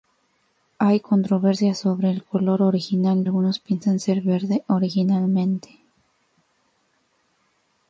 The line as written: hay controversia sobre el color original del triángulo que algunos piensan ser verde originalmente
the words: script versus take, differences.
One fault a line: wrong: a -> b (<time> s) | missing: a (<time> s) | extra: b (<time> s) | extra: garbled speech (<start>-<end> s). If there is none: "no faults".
missing: del triángulo que (3.2 s)